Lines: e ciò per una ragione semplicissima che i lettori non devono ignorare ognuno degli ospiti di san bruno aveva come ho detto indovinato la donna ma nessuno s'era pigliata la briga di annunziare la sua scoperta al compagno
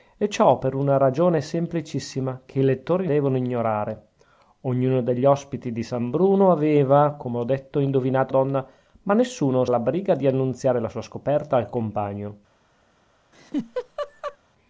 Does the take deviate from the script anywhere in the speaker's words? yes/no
yes